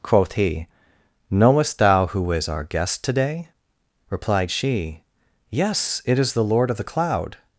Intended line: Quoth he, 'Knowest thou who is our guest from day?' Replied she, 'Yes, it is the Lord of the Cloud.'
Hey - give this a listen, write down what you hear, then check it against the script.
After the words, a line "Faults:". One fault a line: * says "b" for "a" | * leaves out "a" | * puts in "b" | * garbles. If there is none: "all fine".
Quoth he, 'Knowest thou who is our guest to day?' Replied she, 'Yes, it is the Lord of the Cloud.'
Faults:
* says "to" for "from"